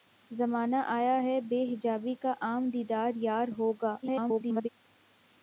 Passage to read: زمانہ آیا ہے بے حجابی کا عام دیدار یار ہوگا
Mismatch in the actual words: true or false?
true